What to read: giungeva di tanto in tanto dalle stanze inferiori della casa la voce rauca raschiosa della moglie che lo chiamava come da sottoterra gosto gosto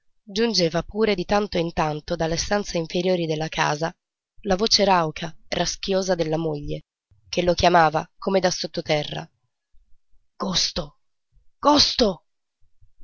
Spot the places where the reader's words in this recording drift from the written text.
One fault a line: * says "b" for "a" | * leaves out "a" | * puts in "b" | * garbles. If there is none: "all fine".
* puts in "pure"